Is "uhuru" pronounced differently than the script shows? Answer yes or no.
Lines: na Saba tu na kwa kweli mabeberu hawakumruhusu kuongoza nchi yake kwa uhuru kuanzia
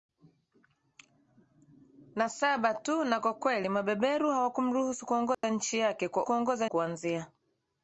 yes